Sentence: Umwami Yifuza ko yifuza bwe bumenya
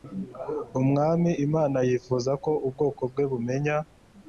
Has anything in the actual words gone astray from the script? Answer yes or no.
yes